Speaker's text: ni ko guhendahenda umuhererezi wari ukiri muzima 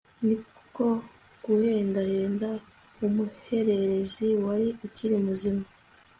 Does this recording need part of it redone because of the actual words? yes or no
no